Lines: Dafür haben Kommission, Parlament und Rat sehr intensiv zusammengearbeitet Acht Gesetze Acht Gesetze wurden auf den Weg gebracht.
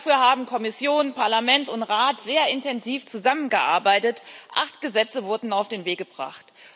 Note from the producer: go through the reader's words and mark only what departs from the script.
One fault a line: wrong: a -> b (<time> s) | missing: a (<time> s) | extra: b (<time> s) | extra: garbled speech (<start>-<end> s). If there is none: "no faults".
missing: Acht Gesetze (5.2 s)